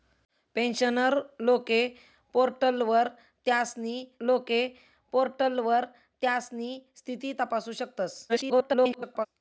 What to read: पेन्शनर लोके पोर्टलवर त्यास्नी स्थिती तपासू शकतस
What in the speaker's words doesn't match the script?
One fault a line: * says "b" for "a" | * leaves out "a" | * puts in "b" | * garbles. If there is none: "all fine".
* puts in "लोके पोर्टलवर त्यास्नी"
* garbles